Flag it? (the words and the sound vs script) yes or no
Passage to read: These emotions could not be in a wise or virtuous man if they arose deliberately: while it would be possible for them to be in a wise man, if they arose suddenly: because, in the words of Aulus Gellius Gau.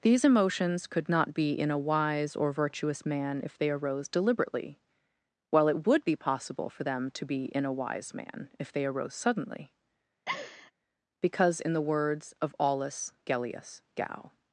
yes